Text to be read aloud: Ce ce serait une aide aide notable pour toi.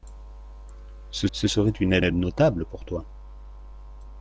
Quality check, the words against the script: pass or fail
pass